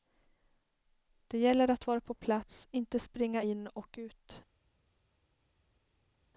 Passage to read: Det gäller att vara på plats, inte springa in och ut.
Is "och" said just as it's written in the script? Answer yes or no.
yes